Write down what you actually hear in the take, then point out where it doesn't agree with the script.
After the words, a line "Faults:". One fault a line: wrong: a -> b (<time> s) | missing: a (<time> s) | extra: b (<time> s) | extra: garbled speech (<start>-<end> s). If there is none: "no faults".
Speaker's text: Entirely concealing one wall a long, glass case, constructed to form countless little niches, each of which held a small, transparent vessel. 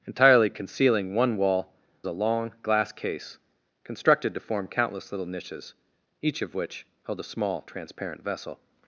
Entirely concealing one wall a long, glass case, constructed to form countless little niches, each of which held a small, transparent vessel.
Faults:
no faults